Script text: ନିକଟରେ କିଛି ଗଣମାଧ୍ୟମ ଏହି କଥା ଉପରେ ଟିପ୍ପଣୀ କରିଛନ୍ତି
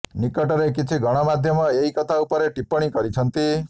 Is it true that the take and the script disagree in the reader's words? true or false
false